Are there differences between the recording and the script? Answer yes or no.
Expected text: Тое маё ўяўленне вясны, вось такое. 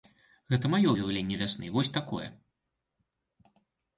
yes